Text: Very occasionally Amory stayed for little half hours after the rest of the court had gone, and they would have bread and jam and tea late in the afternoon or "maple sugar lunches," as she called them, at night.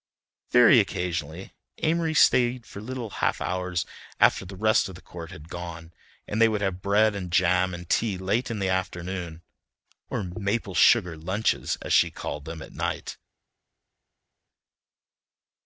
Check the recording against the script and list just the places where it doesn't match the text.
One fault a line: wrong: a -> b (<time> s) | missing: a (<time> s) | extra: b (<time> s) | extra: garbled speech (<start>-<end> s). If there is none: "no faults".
no faults